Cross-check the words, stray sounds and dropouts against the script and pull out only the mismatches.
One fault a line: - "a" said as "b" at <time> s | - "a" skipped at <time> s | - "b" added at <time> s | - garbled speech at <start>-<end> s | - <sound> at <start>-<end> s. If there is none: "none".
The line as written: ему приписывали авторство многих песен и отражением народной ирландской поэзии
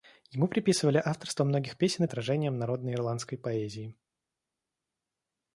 none